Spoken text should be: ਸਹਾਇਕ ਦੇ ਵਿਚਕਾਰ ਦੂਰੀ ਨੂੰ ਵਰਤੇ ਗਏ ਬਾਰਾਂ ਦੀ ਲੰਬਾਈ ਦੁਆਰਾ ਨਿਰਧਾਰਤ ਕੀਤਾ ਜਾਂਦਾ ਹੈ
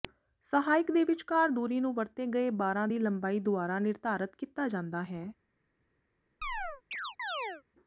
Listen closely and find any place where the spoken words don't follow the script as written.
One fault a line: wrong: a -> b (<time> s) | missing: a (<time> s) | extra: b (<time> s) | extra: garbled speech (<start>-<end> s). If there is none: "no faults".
no faults